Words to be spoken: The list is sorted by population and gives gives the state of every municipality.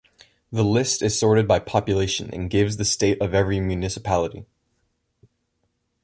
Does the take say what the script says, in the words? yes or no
no